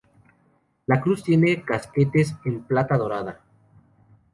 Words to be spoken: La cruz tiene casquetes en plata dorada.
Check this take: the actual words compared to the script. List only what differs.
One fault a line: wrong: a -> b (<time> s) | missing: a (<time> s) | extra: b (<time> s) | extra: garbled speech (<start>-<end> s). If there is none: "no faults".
no faults